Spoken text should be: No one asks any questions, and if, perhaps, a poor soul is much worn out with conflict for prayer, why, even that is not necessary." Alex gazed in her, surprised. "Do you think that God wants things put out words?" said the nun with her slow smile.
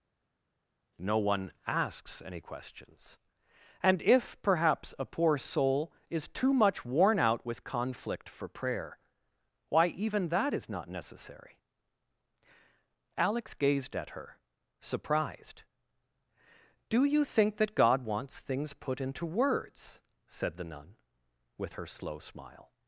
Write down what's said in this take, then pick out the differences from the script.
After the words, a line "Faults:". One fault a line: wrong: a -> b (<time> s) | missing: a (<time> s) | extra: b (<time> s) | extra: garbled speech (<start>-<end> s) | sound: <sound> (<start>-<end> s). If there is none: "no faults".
No one asks any questions, and if, perhaps, a poor soul is too much worn out with conflict for prayer, why, even that is not necessary." Alex gazed at her, surprised. "Do you think that God wants things put into words?" said the nun with her slow smile.
Faults:
extra: too (6.3 s)
wrong: in -> at (14.0 s)
wrong: out -> into (19.0 s)